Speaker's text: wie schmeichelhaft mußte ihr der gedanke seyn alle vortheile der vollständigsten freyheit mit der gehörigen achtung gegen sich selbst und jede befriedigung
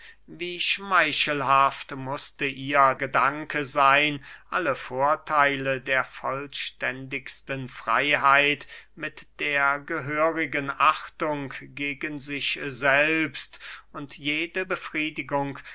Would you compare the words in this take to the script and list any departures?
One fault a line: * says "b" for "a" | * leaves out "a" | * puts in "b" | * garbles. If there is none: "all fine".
* leaves out "der"